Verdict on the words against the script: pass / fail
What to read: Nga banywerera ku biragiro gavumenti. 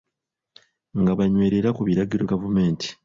pass